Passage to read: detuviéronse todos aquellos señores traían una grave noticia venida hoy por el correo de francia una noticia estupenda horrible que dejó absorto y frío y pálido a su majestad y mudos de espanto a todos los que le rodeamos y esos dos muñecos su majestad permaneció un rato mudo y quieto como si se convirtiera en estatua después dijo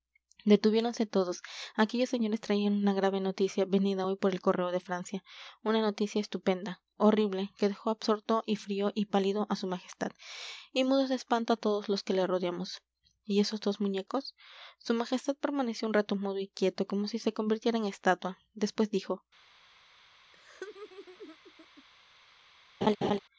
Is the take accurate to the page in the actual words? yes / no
yes